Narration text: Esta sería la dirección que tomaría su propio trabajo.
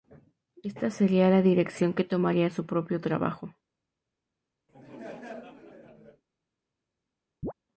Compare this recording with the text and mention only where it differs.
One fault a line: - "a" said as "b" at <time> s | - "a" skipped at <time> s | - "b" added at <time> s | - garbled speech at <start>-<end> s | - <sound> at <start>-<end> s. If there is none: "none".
- laugh at 4.7-6.2 s
- chirp at 7.4-7.5 s